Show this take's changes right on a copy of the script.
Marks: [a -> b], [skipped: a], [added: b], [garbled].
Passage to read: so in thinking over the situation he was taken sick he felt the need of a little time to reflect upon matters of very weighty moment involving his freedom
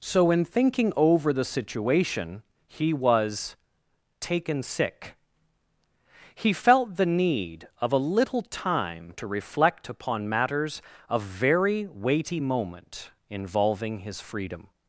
so in thinking over the situation he was taken sick he felt the need of a little time to reflect upon matters of very weighty moment involving his freedom